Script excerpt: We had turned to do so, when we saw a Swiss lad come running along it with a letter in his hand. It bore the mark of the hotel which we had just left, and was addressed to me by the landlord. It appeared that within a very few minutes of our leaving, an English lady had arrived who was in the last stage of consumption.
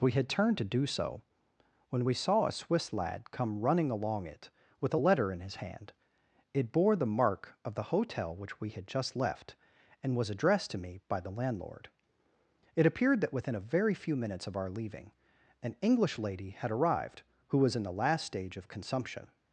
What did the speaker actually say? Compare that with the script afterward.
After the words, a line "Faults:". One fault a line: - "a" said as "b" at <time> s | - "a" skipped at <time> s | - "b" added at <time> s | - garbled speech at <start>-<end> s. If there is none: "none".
We had turned to do so, when we saw a Swiss lad come running along it with a letter in his hand. It bore the mark of the hotel which we had just left, and was addressed to me by the landlord. It appeared that within a very few minutes of our leaving, an English lady had arrived who was in the last stage of consumption.
Faults:
none